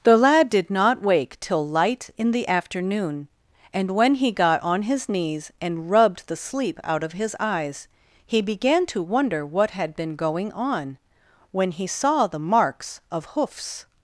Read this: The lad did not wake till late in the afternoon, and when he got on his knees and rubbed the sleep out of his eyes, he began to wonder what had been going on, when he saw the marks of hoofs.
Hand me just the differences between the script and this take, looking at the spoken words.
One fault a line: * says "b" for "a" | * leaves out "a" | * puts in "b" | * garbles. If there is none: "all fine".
* says "light" for "late"